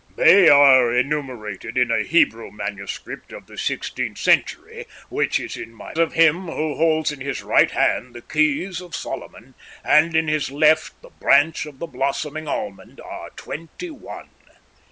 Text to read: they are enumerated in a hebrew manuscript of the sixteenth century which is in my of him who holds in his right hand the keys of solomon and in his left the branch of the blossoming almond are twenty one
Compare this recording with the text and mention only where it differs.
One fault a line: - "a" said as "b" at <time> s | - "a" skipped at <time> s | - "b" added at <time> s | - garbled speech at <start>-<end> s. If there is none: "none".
none